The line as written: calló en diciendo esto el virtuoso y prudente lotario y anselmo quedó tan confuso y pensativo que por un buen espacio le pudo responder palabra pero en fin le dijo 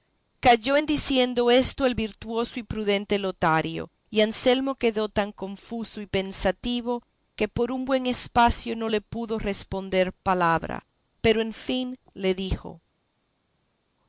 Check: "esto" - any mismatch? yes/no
no